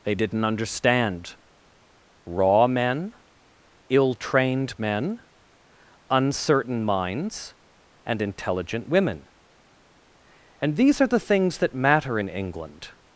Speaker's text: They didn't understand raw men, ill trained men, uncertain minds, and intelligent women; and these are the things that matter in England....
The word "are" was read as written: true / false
true